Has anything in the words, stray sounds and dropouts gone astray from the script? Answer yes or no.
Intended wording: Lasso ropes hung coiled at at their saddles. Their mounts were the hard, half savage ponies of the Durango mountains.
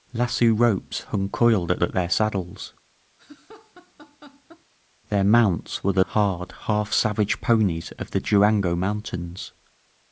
yes